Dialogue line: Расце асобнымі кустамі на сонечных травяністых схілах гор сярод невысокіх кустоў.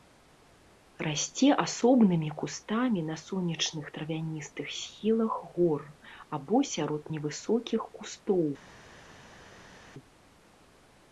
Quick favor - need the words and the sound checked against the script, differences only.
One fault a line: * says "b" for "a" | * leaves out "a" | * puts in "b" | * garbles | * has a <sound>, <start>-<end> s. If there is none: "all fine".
* puts in "або"